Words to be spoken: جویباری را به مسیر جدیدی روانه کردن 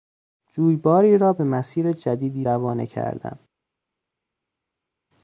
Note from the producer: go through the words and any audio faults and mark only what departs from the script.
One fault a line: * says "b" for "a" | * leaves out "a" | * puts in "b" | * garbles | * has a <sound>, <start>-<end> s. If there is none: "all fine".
all fine